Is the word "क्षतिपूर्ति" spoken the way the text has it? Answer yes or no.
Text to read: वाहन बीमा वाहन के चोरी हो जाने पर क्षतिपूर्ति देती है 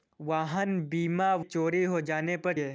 no